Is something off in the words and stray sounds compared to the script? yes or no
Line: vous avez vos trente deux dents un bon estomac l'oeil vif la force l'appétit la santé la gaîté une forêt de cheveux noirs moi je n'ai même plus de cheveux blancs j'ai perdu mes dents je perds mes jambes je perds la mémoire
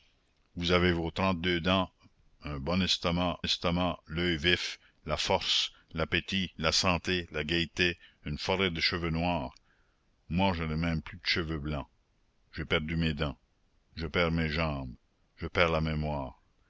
yes